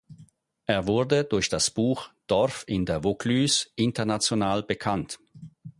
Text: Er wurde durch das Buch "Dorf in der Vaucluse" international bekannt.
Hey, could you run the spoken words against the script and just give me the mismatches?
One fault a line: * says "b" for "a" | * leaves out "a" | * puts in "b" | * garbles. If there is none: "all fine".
all fine